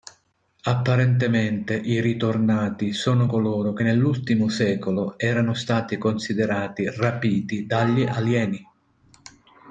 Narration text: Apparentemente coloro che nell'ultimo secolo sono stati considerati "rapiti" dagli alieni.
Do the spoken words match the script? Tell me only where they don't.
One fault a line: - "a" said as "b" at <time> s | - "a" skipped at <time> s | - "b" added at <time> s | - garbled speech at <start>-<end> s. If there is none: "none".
- "i ritornati sono" added at 1.8 s
- "sono" said as "erano" at 5.2 s